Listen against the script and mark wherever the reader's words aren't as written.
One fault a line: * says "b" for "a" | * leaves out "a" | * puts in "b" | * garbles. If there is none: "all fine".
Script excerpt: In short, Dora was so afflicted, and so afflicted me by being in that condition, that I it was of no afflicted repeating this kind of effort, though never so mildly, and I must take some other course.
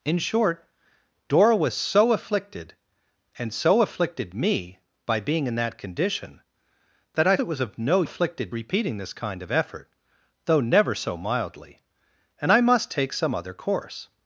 all fine